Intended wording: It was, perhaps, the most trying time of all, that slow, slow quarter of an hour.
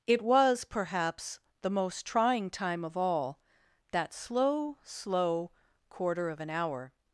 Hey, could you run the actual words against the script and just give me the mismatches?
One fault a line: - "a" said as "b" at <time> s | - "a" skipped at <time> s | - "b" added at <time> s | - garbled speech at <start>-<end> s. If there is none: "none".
none